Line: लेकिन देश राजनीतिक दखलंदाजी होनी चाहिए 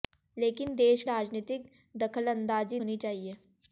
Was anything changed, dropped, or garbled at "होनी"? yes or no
no